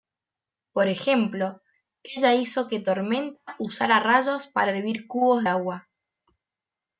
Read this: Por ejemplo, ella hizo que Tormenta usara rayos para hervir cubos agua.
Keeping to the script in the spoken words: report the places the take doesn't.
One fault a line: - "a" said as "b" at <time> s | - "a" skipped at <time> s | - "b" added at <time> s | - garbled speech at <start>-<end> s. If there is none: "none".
none